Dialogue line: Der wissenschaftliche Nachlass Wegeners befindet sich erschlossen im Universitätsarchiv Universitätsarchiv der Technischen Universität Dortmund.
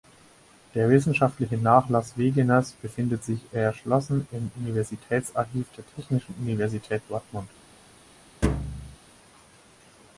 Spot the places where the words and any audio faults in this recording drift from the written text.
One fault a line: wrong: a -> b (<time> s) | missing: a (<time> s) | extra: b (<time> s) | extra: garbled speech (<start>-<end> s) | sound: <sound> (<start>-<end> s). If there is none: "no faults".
missing: Universitätsarchiv (5.7 s)
sound: thud (8.4-9.0 s)